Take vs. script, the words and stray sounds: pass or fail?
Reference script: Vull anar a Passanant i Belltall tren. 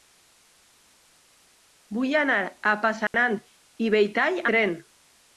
fail